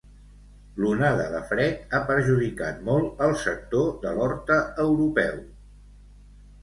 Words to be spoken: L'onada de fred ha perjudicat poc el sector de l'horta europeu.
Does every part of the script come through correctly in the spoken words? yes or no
no